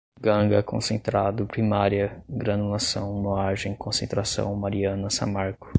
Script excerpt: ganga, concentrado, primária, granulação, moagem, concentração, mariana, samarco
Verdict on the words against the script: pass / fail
pass